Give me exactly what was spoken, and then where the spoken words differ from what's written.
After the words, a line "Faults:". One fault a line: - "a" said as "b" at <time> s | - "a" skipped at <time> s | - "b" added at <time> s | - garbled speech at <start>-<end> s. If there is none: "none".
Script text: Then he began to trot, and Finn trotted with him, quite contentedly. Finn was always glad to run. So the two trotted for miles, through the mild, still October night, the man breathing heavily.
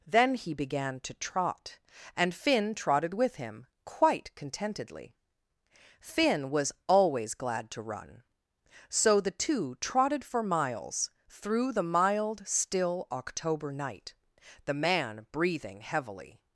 Then he began to trot, and Finn trotted with him, quite contentedly. Finn was always glad to run. So the two trotted for miles, through the mild, still October night, the man breathing heavily.
Faults:
none